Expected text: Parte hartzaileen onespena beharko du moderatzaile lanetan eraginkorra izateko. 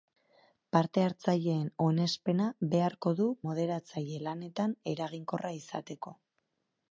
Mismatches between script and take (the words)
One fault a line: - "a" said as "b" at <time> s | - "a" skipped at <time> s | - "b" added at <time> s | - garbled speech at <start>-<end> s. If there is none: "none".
none